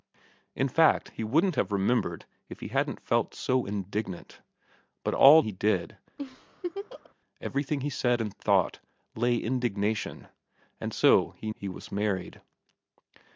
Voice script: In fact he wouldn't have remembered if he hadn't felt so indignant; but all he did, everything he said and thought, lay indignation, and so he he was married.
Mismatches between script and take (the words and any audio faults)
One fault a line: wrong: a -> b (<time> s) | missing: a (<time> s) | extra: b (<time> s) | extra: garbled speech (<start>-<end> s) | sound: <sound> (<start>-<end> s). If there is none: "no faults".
sound: laugh (6.2-7.1 s)